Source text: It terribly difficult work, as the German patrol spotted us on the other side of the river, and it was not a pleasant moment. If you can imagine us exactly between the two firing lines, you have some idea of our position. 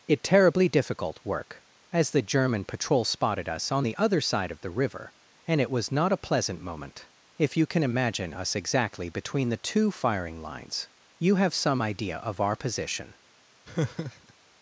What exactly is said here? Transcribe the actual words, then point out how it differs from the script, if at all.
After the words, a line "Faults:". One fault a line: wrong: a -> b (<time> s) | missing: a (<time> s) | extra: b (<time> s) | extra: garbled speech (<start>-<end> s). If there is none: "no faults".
It terribly difficult work, as the German patrol spotted us on the other side of the river, and it was not a pleasant moment. If you can imagine us exactly between the two firing lines, you have some idea of our position.
Faults:
no faults